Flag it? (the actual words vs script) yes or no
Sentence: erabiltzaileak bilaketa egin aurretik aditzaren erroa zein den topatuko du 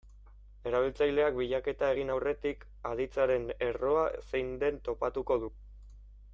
no